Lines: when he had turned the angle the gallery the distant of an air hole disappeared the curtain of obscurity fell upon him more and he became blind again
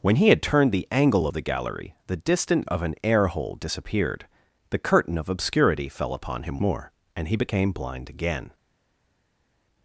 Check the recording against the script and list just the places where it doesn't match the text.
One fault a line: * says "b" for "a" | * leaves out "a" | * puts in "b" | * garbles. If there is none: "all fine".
all fine